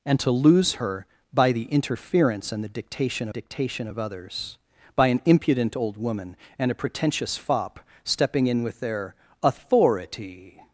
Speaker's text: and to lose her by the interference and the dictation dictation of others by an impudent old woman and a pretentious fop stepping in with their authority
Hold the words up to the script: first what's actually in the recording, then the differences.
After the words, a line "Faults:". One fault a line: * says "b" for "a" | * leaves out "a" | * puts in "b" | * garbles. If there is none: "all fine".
and to lose her by the interference and the dictation dictation of others by an impudent old woman and a pretentious fop stepping in with their authority
Faults:
all fine